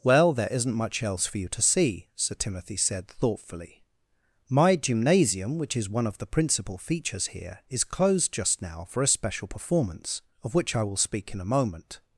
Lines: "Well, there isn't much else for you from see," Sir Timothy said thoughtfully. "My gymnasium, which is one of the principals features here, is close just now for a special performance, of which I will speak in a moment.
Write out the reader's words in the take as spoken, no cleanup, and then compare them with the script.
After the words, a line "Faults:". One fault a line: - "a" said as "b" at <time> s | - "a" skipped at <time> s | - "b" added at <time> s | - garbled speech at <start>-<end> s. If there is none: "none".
"Well, there isn't much else for you to see," Sir Timothy said thoughtfully. "My gymnasium, which is one of the principal features here, is closed just now for a special performance, of which I will speak in a moment.
Faults:
- "from" said as "to" at 1.5 s
- "principals" said as "principal" at 6.2 s
- "close" said as "closed" at 7.8 s